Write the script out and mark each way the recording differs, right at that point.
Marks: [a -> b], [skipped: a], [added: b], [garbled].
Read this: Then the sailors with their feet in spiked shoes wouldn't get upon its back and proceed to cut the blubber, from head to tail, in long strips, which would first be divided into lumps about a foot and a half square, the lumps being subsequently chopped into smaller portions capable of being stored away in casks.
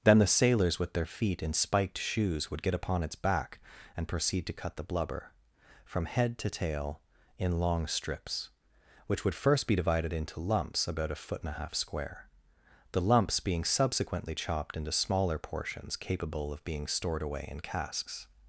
Then the sailors with their feet in spiked shoes [wouldn't -> would] get upon its back and proceed to cut the blubber, from head to tail, in long strips, which would first be divided into lumps about a foot and a half square, the lumps being subsequently chopped into smaller portions capable of being stored away in casks.